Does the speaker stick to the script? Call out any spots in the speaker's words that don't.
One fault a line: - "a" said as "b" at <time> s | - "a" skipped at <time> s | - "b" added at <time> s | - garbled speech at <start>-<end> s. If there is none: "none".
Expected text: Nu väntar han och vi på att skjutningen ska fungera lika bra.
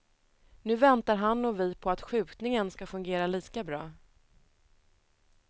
none